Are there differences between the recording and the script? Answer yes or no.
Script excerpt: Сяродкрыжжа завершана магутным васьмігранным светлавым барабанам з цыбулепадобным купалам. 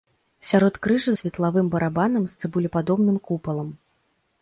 yes